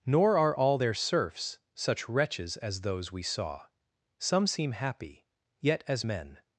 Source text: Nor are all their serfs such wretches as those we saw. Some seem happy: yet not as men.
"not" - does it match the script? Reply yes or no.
no